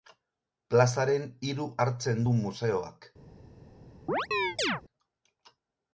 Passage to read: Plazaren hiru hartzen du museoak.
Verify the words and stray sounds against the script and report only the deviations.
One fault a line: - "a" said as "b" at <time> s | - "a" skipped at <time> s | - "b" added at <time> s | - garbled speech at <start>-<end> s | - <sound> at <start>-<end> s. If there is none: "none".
- chirp at 4.1-4.8 s